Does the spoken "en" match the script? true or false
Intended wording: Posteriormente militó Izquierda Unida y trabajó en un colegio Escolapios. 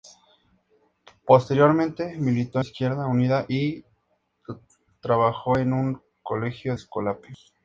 true